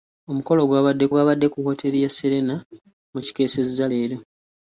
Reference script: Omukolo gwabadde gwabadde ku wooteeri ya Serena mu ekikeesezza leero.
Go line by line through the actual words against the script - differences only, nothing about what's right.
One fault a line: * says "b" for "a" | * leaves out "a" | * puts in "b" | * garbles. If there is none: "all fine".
all fine